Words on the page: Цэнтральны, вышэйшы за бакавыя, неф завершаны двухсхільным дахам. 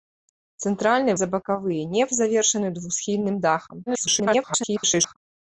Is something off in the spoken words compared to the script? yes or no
yes